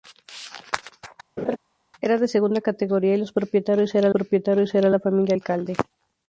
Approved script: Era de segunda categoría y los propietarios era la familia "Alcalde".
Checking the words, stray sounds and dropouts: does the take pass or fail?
fail